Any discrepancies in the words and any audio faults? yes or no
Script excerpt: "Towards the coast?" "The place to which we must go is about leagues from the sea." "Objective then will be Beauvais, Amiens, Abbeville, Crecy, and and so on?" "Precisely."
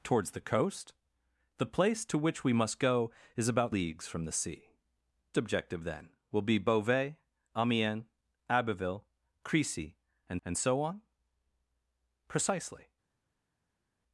no